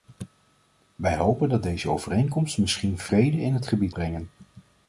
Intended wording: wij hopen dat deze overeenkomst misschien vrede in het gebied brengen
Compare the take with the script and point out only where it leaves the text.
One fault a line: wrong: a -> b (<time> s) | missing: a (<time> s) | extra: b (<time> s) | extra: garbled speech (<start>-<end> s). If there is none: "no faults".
no faults